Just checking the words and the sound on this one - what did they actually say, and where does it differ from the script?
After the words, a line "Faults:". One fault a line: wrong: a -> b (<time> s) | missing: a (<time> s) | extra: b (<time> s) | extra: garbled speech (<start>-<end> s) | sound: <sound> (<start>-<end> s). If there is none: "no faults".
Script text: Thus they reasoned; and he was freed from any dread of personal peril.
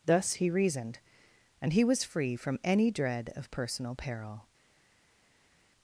Thus he reasoned; and he was free from any dread of personal peril.
Faults:
wrong: they -> he (0.3 s)
wrong: freed -> free (2.0 s)